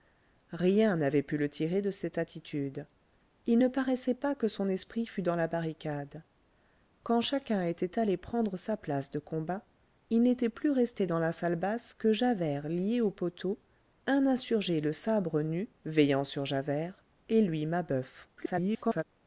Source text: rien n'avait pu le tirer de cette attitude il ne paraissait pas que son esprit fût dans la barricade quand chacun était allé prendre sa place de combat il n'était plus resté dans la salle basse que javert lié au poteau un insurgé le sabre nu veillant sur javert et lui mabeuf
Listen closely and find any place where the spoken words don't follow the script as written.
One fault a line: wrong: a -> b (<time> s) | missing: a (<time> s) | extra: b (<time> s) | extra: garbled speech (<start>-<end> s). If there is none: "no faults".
extra: garbled speech (18.4-19.0 s)